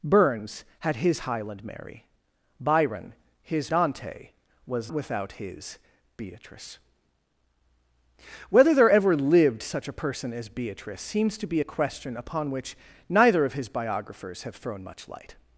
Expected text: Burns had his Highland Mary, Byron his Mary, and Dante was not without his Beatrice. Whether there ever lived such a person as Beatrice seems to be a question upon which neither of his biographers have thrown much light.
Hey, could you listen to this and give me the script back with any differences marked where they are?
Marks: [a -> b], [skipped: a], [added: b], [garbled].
Burns had his Highland Mary, Byron his [skipped: Mary, and] Dante was [skipped: not] without his Beatrice. Whether there ever lived such a person as Beatrice seems to be a question upon which neither of his biographers have thrown much light.